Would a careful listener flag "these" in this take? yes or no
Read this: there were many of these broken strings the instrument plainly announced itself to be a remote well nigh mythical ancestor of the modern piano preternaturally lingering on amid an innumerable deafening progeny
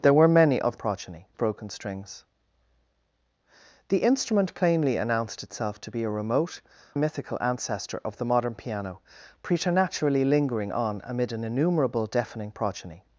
yes